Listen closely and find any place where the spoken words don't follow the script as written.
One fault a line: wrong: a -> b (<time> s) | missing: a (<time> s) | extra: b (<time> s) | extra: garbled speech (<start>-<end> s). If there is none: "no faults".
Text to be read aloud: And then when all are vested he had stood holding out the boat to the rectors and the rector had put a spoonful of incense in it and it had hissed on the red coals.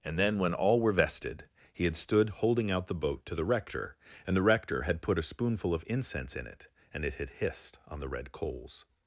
wrong: are -> were (0.8 s)
wrong: rectors -> rector (3.5 s)